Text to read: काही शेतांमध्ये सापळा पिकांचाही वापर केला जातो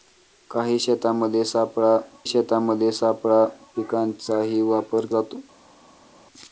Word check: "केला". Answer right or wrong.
wrong